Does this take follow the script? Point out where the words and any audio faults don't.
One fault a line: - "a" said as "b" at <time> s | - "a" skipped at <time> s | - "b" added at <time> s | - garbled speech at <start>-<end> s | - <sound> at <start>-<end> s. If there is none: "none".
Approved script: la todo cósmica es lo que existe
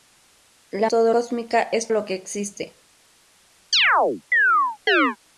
- chirp at 3.7-5.2 s